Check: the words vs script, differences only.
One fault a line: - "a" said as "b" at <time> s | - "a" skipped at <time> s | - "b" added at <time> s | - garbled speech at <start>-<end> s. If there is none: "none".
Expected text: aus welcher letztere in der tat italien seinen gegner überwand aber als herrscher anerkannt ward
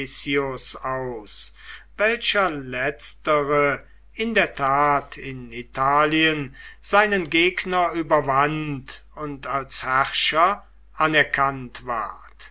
- "in" added at 5.2 s
- "aber" said as "und" at 9.1 s